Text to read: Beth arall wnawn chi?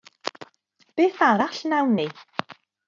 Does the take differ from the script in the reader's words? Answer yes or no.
yes